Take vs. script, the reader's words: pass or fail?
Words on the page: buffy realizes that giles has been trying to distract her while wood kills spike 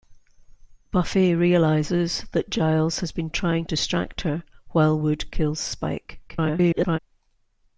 fail